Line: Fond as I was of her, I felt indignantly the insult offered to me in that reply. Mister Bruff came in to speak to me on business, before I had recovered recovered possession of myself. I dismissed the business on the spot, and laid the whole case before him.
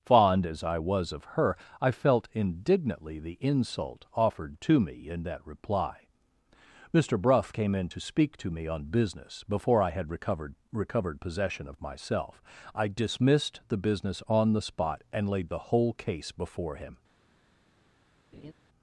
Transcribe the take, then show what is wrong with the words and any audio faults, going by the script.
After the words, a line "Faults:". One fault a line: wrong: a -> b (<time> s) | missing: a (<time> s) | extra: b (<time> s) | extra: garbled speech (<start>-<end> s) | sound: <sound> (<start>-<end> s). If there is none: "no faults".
Fond as I was of her, I felt indignantly the insult offered to me in that reply. Mister Bruff came in to speak to me on business, before I had recovered recovered possession of myself. I dismissed the business on the spot, and laid the whole case before him.
Faults:
sound: laugh (18.3-18.5 s)